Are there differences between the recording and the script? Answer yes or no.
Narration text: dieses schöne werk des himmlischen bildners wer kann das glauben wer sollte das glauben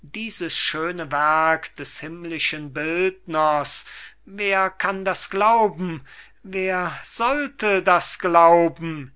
no